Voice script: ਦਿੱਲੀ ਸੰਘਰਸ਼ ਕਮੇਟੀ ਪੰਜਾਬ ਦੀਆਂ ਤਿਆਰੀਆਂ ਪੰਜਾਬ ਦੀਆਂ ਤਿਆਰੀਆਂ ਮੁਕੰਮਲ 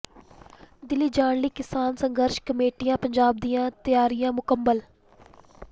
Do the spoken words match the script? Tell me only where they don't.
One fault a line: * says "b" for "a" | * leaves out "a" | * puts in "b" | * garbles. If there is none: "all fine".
* says "ਜਾਣ ਲਈ ਕਿਸਾਨ ਸੰਘਰਸ਼ ਕਮੇਟੀ" for "ਸੰਘਰਸ਼ ਕਮੇਟੀ ਪੰਜਾਬ ਦੀਆਂ ਤਿਆਰੀਆਂ"